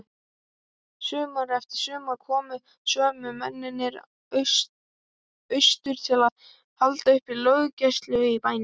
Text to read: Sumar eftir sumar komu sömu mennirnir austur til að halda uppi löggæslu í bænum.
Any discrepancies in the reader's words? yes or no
no